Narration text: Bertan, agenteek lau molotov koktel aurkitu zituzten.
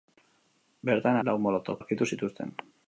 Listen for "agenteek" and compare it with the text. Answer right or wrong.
wrong